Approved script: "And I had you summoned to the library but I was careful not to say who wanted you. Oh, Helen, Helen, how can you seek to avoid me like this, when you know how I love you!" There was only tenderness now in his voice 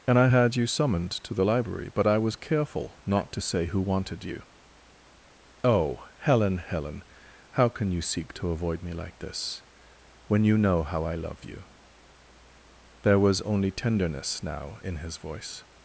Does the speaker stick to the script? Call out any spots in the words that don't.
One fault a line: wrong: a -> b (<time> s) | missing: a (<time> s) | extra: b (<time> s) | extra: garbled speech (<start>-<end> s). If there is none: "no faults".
no faults